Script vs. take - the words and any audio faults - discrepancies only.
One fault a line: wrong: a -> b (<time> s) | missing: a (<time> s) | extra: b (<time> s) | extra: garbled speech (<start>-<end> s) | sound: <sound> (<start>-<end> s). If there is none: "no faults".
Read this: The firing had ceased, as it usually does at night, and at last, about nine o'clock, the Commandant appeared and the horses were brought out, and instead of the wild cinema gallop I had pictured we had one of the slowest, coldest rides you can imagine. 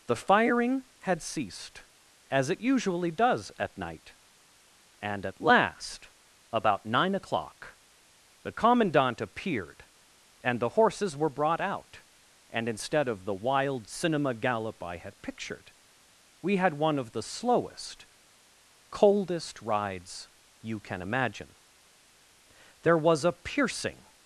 extra: There was a piercing (22.8 s)